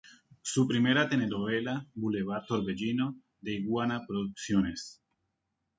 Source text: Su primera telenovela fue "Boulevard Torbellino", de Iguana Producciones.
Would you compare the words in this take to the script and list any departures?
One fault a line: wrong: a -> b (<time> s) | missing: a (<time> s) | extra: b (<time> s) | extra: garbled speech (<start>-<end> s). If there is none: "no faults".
missing: fue (1.9 s)